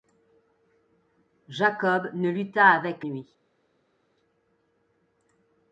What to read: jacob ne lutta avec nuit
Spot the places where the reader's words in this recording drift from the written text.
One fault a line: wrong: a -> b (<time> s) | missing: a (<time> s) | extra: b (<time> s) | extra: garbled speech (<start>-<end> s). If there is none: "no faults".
no faults